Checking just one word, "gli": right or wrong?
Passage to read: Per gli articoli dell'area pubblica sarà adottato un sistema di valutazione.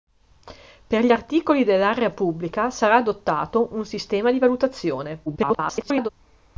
right